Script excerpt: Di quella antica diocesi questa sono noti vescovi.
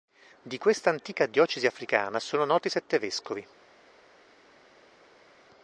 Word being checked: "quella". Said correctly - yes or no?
no